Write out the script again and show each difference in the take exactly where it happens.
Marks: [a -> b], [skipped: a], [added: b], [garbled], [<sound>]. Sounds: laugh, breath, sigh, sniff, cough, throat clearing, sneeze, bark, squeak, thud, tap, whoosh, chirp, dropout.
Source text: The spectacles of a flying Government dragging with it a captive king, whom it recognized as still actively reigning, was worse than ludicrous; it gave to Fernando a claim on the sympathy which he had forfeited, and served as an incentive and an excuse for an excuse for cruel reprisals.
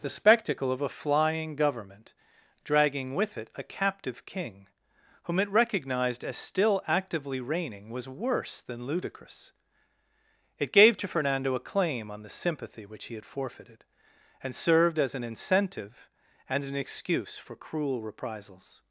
The [spectacles -> spectacle] of a flying Government dragging with it a captive king, whom it recognized as still actively reigning, was worse than ludicrous; it gave to Fernando a claim on the sympathy which he had forfeited, and served as an incentive and an excuse for [skipped: an excuse for] cruel reprisals.